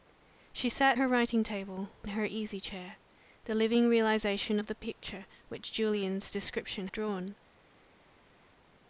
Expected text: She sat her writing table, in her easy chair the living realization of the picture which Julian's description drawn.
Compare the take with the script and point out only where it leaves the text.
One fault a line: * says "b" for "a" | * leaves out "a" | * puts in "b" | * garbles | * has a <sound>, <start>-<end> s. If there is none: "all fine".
all fine